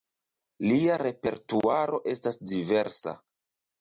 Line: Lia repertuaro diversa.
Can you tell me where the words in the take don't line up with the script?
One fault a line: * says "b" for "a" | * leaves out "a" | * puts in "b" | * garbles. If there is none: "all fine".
* puts in "estas"